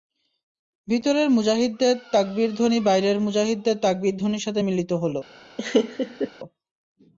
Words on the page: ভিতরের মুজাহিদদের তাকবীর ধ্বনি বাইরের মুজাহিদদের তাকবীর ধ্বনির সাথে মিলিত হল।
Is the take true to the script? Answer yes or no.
yes